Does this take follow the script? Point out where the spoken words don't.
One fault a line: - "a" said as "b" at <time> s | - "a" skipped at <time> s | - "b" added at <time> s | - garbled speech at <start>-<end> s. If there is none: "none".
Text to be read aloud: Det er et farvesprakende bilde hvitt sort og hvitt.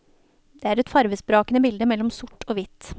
- "hvitt" said as "mellom" at 1.9 s